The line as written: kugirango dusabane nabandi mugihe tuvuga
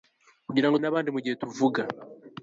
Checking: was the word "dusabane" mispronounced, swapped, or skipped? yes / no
yes